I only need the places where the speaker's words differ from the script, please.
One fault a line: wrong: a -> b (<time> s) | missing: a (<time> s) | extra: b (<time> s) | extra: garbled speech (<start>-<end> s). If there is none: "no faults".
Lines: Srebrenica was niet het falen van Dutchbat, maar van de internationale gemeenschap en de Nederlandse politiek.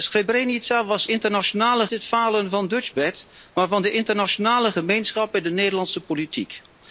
wrong: niet -> internationale (1.1 s)